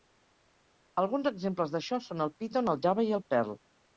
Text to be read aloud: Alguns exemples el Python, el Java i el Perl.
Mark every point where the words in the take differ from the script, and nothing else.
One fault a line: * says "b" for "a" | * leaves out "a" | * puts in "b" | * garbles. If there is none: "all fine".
* puts in "d'això són"